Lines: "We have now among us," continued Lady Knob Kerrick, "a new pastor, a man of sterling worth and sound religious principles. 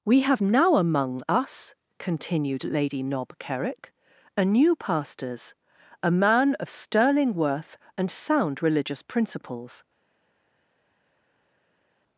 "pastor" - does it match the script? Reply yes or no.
no